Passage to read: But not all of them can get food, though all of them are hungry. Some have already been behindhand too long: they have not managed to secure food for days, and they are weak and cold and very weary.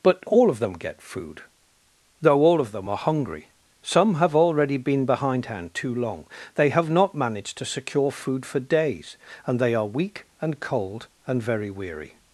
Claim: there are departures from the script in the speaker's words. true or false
true